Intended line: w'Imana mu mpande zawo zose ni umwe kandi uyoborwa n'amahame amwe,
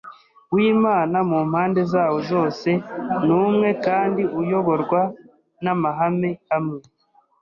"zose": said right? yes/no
yes